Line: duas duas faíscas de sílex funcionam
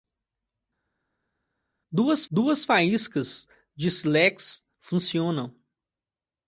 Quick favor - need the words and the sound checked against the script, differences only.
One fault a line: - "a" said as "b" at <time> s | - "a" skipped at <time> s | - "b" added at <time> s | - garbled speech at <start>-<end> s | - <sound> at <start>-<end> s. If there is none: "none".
none